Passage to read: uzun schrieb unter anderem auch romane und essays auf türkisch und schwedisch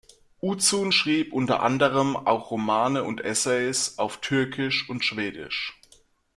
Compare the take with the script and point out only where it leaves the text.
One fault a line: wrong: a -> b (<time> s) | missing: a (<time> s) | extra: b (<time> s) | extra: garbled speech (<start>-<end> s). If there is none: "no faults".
no faults